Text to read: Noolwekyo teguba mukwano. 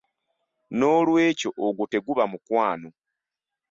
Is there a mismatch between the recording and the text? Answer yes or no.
yes